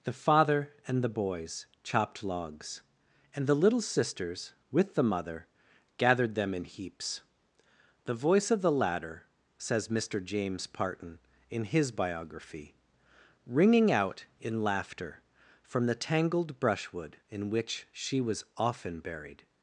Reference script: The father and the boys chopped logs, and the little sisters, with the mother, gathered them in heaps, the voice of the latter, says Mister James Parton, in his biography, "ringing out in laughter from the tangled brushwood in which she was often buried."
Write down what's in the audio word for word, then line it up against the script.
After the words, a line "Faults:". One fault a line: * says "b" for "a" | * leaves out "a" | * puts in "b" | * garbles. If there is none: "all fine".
The father and the boys chopped logs, and the little sisters, with the mother, gathered them in heaps, the voice of the latter, says Mister James Parton, in his biography, "ringing out in laughter from the tangled brushwood in which she was often buried."
Faults:
all fine